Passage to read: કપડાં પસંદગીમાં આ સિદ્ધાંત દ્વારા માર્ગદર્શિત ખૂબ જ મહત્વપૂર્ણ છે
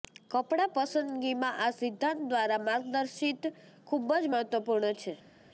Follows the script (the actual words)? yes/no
yes